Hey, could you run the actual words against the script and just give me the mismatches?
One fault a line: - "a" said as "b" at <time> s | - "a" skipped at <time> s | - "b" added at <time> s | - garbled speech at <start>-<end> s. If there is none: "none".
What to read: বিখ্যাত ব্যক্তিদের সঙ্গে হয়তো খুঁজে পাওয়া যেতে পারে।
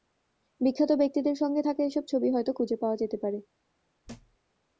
- "থাকা এসব ছবি" added at 1.6 s